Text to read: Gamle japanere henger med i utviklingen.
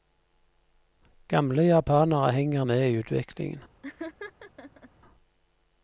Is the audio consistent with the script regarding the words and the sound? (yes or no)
no